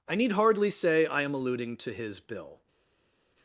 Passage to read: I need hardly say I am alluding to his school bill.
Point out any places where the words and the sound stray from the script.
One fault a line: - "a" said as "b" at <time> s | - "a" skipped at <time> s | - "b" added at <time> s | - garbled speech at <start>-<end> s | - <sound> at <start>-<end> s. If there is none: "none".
- "school" skipped at 2.2 s